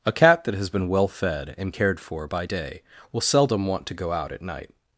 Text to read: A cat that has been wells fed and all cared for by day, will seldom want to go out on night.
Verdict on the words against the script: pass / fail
fail